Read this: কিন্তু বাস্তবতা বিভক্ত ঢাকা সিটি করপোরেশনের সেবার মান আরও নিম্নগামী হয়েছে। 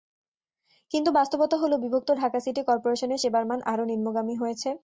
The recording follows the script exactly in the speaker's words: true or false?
false